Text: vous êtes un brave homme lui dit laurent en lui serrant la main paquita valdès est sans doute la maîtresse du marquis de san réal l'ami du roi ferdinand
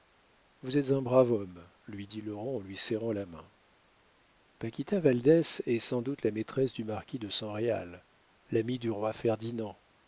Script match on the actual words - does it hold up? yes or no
yes